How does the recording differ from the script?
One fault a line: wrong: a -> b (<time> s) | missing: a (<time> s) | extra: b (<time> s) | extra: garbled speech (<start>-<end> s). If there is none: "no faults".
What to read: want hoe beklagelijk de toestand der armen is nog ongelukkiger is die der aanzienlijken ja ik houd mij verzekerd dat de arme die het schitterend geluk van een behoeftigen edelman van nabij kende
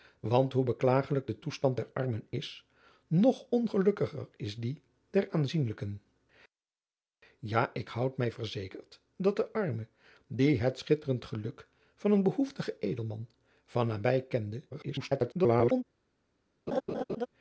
extra: garbled speech (14.7-15.8 s)